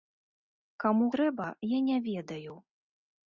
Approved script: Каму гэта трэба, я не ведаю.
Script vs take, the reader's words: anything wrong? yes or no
yes